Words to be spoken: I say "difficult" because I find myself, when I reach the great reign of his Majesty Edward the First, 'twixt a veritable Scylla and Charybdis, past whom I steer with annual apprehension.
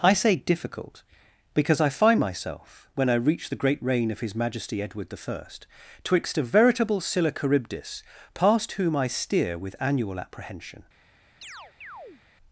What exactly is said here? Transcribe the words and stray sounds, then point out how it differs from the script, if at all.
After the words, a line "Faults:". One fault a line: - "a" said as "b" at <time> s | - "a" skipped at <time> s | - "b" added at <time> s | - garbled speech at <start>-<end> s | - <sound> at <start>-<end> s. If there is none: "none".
I say "difficult" because I find myself, when I reach the great reign of his Majesty Edward the First, 'twixt a veritable Scylla Charybdis, past whom I steer with annual apprehension.
Faults:
- "and" skipped at 7.3 s
- chirp at 11.4-12.2 s